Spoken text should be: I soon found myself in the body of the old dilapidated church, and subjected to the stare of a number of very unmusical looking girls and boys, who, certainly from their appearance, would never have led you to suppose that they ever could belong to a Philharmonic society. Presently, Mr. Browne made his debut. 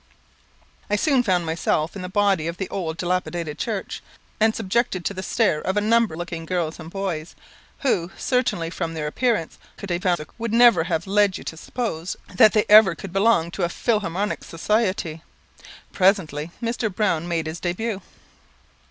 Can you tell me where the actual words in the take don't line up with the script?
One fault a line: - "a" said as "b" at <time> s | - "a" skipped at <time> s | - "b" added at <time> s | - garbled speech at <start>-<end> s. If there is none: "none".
- "of very unmusical" skipped at 6.2 s
- garbled speech at 9.8-10.3 s